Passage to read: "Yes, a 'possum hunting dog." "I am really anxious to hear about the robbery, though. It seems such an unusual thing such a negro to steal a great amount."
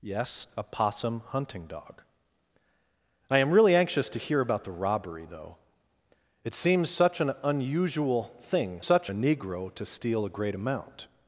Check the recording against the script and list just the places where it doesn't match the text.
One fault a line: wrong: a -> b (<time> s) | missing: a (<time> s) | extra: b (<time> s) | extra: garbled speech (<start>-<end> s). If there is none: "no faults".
no faults